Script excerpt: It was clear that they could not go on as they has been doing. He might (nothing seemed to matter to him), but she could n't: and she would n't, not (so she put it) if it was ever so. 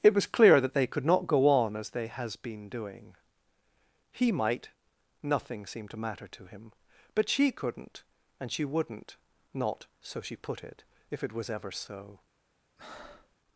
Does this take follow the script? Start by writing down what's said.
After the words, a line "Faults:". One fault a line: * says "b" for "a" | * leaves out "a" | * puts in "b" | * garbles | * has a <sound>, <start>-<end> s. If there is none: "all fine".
It was clear that they could not go on as they has been doing. He might (nothing seemed to matter to him), but she could n't: and she would n't, not (so she put it) if it was ever so.
Faults:
* has a breath, 12.8-13.4 s